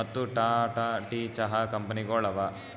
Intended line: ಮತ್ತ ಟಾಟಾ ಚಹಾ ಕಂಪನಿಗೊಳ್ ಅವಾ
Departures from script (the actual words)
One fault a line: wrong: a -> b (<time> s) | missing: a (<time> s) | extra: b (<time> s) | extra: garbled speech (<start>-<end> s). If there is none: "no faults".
extra: ಟೀ (1.1 s)